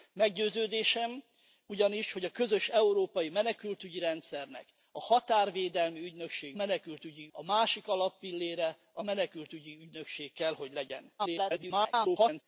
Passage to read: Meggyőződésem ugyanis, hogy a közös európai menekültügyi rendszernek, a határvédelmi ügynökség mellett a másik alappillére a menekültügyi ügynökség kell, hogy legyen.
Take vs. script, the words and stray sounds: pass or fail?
fail